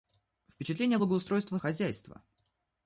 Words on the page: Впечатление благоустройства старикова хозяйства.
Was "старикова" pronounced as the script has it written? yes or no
no